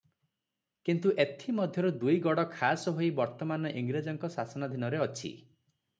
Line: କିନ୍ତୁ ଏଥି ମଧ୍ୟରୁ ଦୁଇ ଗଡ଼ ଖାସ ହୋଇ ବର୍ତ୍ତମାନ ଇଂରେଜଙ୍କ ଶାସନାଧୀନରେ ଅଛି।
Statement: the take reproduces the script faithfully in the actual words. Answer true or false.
true